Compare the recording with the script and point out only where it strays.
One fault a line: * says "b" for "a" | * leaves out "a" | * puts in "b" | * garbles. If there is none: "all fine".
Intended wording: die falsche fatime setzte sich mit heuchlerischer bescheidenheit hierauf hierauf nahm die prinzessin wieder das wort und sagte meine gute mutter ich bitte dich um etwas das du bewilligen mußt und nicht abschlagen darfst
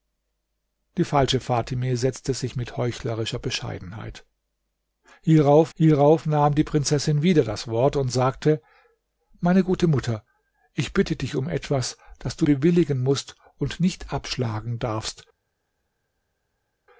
all fine